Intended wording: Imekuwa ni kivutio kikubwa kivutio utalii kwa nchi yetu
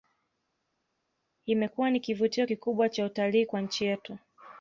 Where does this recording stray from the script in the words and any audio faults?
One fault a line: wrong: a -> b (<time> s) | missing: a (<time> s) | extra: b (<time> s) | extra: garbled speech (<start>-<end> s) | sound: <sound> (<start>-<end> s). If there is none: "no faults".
wrong: kivutio -> cha (2.9 s)